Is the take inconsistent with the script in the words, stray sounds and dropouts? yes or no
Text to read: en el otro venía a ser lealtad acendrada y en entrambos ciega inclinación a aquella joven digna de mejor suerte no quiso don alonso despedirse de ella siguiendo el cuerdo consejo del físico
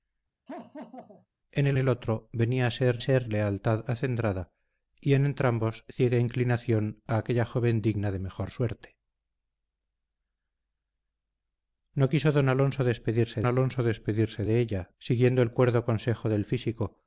yes